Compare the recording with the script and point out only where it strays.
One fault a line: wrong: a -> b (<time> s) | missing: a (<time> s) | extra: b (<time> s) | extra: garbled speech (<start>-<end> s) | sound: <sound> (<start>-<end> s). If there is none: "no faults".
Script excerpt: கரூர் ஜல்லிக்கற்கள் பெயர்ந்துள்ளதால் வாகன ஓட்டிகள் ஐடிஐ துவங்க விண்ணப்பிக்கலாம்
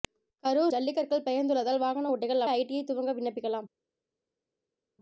no faults